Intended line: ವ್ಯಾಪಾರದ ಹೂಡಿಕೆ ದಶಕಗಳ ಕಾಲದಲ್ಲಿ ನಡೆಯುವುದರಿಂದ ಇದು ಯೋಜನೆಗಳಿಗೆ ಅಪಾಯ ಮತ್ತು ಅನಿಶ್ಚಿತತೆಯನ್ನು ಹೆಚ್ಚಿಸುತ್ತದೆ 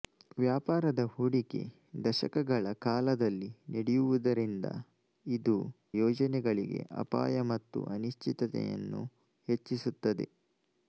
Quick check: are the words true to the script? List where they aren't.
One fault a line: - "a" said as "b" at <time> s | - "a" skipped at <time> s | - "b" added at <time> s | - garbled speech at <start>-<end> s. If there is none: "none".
none